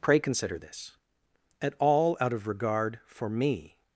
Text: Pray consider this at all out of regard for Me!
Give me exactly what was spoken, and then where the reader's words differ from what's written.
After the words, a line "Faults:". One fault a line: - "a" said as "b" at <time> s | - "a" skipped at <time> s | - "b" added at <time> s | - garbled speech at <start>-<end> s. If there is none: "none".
Pray consider this at all out of regard for Me!
Faults:
none